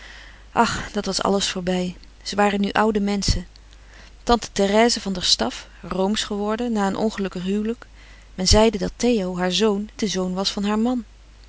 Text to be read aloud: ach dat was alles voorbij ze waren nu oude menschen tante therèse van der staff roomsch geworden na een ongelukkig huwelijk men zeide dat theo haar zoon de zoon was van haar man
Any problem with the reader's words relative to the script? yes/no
no